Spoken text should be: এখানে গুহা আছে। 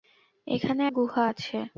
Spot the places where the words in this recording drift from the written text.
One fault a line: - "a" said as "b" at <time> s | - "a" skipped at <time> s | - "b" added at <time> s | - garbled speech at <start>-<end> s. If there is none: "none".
none